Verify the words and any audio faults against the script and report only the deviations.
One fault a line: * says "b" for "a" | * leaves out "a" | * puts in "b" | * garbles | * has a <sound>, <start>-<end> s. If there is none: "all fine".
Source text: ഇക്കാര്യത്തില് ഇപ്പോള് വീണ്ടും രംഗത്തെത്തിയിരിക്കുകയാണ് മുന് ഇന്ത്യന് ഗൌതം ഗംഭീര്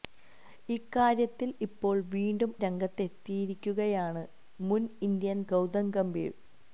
all fine